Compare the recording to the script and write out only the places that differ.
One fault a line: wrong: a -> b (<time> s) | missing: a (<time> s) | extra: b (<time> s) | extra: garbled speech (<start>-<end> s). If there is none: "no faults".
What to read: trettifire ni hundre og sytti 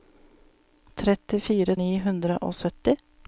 no faults